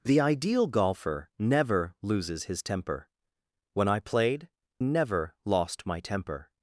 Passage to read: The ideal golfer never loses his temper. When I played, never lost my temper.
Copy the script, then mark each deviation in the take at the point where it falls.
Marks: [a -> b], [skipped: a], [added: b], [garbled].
The ideal golfer never loses his temper. When I played, never lost my temper.